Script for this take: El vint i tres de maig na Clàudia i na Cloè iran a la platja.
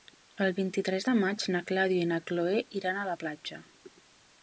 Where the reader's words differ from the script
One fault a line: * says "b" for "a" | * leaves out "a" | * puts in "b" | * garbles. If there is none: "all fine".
all fine